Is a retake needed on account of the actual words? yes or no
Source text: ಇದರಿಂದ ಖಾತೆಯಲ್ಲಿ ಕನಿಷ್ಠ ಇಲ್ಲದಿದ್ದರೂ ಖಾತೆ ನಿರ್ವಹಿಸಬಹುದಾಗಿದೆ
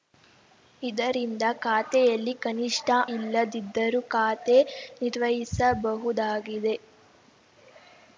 no